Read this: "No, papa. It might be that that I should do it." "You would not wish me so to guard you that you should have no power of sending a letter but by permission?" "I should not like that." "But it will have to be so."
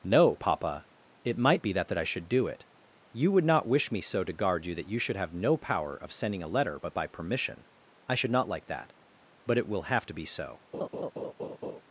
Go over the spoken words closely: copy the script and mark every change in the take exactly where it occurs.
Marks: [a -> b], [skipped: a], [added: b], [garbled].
"No, papa. It might be that that I should do it." "You would not wish me so to guard you that you should have no power of sending a letter but by permission?" "I should not like that." "But it will have to be so."